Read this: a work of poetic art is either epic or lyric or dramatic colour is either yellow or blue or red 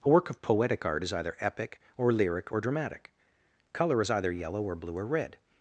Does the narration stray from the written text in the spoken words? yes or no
no